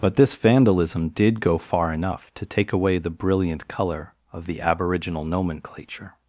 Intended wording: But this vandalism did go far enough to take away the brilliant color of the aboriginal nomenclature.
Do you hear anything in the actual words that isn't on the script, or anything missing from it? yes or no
no